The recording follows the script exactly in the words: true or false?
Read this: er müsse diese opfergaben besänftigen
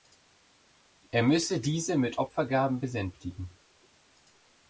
false